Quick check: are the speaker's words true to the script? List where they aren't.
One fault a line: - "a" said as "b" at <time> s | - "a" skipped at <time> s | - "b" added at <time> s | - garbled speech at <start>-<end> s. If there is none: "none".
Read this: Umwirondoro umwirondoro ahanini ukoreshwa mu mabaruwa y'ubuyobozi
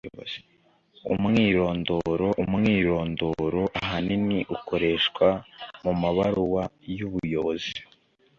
none